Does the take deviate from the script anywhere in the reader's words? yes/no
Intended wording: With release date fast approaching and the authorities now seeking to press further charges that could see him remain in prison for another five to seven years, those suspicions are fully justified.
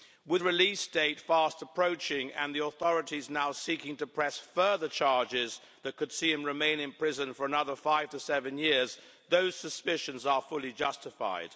no